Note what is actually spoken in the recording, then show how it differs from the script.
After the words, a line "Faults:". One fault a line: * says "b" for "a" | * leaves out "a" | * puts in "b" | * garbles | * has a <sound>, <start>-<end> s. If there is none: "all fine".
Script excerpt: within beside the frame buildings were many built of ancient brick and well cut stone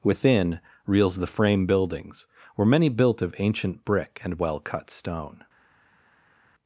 within reels the frame buildings were many built of ancient brick and well cut stone
Faults:
* says "reels" for "beside"